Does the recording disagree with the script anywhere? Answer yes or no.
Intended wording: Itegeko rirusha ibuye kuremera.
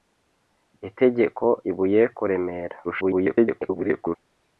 yes